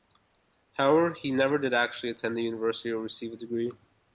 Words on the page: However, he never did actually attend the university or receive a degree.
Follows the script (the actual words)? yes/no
yes